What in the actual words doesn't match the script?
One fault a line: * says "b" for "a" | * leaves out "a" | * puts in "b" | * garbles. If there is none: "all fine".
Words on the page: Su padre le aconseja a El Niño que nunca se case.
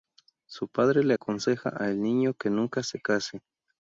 all fine